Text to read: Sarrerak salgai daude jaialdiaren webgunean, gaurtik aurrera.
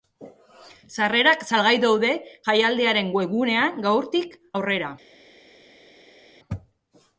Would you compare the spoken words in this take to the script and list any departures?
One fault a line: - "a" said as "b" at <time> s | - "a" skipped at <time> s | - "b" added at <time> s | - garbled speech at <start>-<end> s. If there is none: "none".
none